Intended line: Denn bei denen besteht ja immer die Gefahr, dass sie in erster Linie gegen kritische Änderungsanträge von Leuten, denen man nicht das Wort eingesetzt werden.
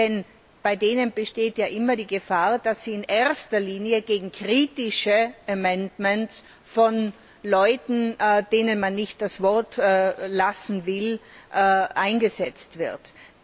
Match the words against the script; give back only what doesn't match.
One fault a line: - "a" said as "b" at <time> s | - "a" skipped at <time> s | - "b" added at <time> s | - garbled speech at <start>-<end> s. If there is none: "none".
- "lassen will" added at 9.8 s